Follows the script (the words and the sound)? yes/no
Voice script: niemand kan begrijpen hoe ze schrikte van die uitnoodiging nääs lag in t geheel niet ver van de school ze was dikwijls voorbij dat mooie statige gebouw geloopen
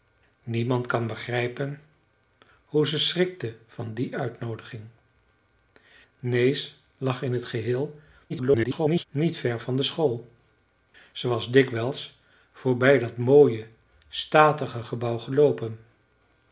no